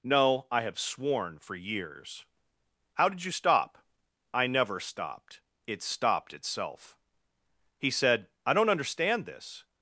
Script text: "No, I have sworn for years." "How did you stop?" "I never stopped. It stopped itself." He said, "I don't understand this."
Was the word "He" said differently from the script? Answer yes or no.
no